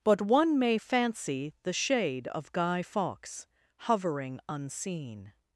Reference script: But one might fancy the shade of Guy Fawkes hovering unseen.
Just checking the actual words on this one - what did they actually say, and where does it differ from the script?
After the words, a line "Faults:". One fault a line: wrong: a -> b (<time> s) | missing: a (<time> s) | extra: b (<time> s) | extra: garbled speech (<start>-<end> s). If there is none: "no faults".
But one may fancy the shade of Guy Fawkes hovering unseen.
Faults:
wrong: might -> may (0.6 s)